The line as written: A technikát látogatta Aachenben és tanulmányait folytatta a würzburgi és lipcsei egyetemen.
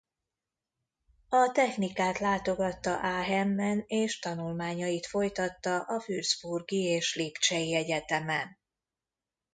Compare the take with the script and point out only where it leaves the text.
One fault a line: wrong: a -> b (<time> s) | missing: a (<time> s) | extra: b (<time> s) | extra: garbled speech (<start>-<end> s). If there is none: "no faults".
no faults